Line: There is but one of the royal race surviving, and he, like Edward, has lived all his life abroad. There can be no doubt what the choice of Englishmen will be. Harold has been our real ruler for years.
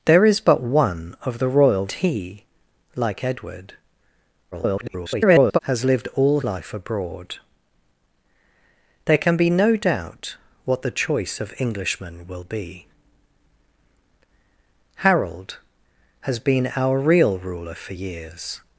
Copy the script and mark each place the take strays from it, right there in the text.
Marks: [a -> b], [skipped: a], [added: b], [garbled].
There is but one of the royal [skipped: race surviving, and] he, like Edward, [garbled] has lived all [skipped: his] life abroad. There can be no doubt what the choice of Englishmen will be. Harold has been our real ruler for years.